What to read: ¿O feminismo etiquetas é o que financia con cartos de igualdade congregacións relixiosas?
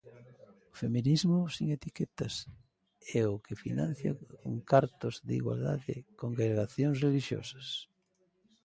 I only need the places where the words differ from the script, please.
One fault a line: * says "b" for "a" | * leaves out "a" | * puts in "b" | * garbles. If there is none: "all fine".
* puts in "sen"